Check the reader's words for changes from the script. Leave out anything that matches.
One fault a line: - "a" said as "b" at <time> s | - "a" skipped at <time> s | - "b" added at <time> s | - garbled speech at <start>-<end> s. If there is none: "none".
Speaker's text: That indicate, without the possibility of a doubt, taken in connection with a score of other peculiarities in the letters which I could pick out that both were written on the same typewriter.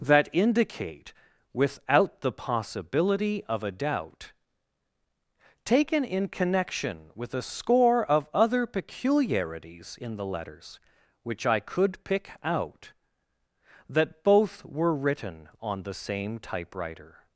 none